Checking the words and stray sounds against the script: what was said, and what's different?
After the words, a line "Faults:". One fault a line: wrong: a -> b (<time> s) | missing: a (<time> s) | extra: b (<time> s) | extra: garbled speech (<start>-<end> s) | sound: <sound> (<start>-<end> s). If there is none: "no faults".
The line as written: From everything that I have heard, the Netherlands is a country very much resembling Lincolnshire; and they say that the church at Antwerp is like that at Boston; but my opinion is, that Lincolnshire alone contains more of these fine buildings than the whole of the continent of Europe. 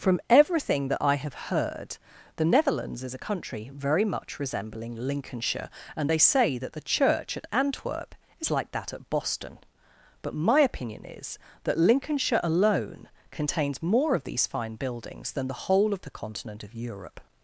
From everything that I have heard, the Netherlands is a country very much resembling Lincolnshire; and they say that the church at Antwerp is like that at Boston; but my opinion is, that Lincolnshire alone contains more of these fine buildings than the whole of the continent of Europe.
Faults:
no faults